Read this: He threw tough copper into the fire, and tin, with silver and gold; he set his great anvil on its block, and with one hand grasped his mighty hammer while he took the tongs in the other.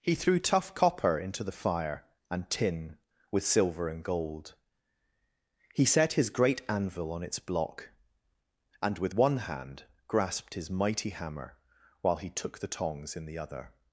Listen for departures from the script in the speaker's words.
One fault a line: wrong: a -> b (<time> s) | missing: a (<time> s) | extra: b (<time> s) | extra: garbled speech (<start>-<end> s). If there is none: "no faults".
no faults